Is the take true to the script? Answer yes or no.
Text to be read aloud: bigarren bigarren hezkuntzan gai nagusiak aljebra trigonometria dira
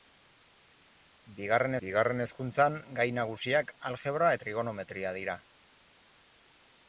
yes